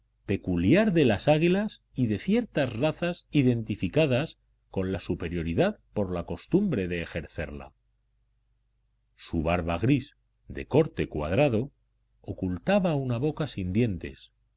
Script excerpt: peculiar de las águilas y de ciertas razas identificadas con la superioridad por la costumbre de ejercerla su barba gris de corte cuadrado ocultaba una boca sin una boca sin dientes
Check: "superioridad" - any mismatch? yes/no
no